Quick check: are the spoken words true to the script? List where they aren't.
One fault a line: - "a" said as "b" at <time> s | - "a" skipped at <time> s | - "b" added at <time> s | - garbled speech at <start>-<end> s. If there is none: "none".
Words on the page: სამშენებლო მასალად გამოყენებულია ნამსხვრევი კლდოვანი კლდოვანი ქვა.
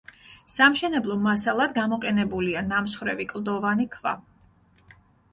- "კლდოვანი" skipped at 3.9 s